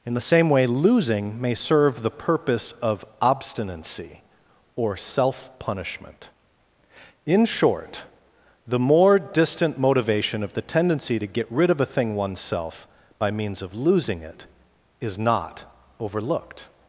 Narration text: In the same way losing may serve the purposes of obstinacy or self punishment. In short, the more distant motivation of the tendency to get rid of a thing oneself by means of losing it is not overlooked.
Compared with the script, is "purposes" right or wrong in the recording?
wrong